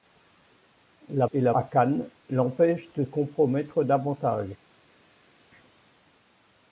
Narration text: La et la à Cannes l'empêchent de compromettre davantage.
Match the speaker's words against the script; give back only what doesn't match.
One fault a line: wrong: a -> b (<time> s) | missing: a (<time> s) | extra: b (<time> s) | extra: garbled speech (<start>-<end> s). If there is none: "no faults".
no faults